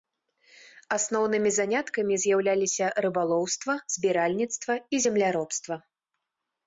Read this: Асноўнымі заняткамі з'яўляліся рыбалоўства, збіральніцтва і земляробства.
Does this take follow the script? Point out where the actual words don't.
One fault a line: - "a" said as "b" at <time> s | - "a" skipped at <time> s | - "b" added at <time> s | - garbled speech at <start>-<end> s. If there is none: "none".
none